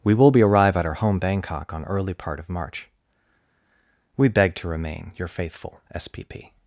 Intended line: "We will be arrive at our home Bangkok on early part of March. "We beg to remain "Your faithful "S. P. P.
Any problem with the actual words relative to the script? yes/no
no